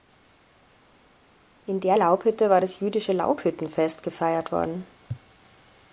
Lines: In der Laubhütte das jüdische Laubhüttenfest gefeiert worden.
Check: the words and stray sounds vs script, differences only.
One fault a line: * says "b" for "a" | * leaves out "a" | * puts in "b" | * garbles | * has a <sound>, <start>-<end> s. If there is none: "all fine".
* puts in "war"